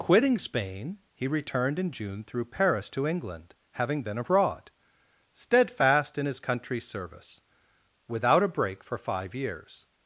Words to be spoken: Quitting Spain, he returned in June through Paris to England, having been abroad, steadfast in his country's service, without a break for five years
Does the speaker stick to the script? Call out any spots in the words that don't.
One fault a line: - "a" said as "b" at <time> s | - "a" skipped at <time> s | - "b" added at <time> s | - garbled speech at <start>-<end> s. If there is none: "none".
none